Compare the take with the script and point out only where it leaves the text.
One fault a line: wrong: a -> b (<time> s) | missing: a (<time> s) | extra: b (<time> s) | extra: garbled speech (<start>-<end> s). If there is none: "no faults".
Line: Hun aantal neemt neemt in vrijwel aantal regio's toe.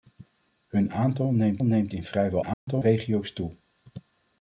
no faults